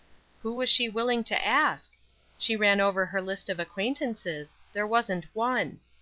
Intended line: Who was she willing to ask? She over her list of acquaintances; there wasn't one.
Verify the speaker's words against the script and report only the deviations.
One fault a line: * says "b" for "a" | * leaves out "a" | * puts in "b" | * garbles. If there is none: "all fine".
* puts in "ran"